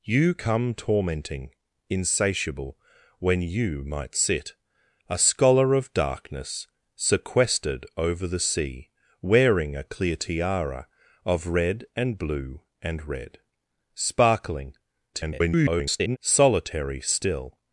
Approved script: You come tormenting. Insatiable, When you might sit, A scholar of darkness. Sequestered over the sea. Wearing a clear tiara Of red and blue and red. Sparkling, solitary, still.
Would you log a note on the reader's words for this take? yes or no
yes